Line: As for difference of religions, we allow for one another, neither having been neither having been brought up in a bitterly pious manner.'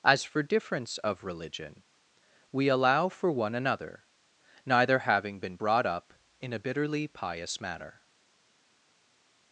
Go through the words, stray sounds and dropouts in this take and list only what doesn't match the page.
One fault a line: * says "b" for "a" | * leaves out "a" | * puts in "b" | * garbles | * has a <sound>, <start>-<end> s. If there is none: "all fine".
* says "religion" for "religions"
* leaves out "neither having been"